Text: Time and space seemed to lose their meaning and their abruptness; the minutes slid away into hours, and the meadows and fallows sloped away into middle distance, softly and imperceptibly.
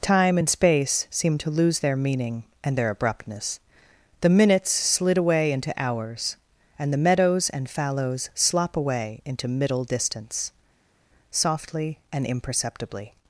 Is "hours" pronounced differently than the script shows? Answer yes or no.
no